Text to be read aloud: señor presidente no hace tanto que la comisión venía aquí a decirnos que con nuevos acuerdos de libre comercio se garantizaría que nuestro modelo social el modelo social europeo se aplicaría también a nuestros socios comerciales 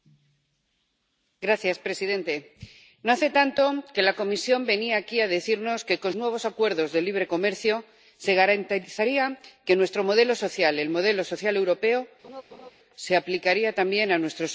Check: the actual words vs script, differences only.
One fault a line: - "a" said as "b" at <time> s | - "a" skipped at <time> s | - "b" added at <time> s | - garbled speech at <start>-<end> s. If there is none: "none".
none